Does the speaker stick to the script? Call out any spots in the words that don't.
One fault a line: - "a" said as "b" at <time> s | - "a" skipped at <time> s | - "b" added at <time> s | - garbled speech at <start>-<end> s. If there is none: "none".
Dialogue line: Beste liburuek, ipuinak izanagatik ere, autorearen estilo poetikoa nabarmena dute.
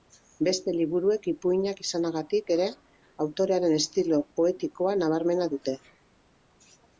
none